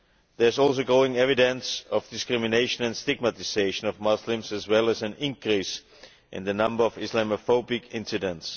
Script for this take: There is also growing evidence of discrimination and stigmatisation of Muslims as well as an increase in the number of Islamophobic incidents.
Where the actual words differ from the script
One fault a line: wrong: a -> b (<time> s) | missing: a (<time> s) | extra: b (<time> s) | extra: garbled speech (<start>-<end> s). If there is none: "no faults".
no faults